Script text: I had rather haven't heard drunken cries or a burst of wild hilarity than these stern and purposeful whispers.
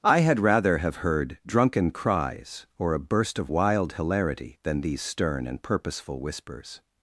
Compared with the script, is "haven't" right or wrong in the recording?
wrong